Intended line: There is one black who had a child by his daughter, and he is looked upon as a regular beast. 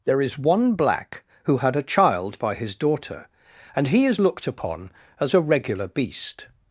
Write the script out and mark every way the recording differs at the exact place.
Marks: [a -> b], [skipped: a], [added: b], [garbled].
There is one black who had a child by his daughter, and he is looked upon as a regular beast.